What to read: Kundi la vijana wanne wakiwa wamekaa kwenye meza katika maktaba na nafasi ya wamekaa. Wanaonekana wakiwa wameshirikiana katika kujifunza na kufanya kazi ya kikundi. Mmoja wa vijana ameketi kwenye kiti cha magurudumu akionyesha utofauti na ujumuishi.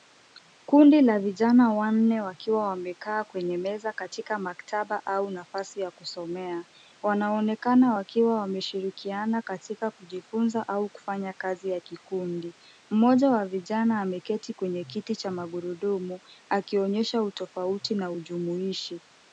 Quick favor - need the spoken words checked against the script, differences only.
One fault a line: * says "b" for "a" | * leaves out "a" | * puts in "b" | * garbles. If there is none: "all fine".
* says "au" for "na"
* says "kusomea" for "wamekaa"
* says "au" for "na"